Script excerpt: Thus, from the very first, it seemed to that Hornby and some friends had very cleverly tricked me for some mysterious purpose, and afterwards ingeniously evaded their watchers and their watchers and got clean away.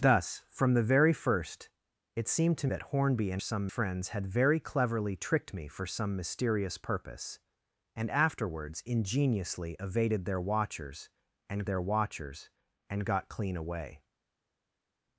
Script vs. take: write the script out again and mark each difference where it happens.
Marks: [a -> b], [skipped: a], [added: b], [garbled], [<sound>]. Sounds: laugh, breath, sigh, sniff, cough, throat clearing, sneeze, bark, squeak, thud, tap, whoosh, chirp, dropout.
Thus, from the very first, it seemed to that Hornby and some friends had very cleverly tricked me for some mysterious purpose, and afterwards ingeniously evaded their watchers and their watchers and got clean away.